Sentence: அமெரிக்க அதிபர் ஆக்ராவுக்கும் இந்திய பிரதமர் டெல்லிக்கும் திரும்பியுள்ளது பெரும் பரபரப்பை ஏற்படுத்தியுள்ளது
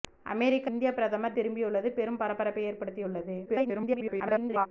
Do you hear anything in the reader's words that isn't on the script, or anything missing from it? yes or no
yes